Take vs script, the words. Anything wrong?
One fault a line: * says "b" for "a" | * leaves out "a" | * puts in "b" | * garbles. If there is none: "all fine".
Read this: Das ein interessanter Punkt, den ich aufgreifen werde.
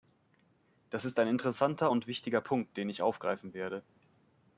* puts in "ist"
* puts in "und wichtiger"